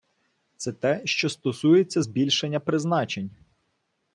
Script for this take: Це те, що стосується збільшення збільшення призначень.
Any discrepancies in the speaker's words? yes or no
yes